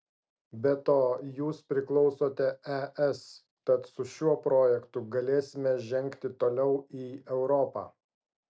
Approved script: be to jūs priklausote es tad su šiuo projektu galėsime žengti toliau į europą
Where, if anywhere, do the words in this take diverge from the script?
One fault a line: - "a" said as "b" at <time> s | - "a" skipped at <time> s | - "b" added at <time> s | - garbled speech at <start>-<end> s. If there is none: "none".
none